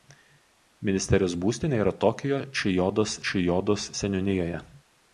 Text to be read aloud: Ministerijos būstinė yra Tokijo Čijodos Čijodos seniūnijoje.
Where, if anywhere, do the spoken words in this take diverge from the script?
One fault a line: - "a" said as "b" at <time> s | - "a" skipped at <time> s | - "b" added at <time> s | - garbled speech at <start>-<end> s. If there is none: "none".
none